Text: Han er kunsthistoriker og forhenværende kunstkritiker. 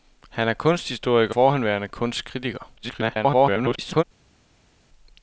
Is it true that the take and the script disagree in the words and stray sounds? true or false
true